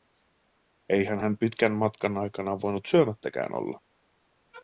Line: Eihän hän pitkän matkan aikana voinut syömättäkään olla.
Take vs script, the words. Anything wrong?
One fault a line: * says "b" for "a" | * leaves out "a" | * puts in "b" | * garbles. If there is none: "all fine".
all fine